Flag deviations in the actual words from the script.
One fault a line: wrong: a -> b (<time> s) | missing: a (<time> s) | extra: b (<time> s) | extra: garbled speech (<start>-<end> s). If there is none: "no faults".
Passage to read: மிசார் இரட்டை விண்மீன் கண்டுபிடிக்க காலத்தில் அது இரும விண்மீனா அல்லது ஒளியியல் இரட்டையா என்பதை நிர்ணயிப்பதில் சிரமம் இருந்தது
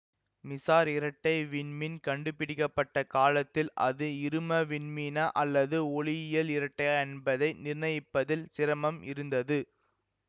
extra: பட்ட (2.7 s)